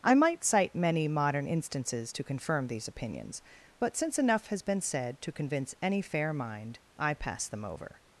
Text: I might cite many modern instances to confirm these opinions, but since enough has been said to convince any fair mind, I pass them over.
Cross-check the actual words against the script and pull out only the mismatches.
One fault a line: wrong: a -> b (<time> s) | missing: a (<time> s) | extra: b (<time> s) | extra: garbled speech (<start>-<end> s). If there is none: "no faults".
no faults